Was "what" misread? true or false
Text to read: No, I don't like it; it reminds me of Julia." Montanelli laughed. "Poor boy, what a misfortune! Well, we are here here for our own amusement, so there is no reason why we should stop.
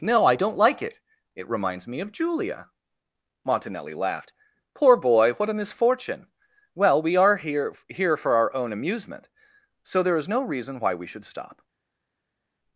false